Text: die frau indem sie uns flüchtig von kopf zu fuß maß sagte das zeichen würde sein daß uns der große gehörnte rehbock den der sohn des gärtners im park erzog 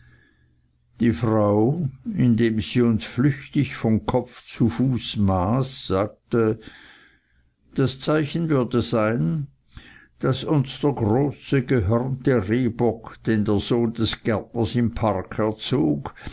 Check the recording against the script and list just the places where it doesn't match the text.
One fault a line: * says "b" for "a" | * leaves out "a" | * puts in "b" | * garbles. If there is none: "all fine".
all fine